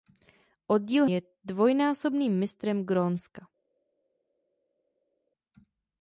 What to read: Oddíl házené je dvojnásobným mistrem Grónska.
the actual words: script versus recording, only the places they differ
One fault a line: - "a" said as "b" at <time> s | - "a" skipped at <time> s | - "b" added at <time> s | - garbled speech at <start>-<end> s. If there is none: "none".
- "házené" skipped at 1.1 s